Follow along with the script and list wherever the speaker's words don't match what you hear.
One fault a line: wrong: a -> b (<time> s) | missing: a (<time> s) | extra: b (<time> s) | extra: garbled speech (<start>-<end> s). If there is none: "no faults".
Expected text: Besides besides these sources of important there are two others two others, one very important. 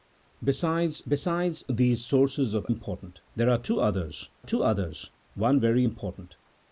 no faults